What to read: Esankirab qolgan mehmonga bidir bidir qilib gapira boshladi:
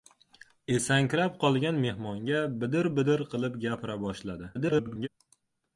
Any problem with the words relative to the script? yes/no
yes